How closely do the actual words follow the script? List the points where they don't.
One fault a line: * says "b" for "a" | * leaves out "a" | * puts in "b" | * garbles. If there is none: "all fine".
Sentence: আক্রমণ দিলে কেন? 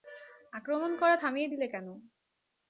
* puts in "করা থামিয়ে"